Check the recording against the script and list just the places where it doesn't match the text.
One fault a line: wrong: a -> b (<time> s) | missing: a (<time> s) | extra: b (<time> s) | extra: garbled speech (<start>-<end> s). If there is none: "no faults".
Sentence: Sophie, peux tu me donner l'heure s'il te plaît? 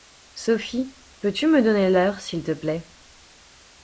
no faults